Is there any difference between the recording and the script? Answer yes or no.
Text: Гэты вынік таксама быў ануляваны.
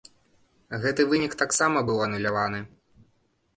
no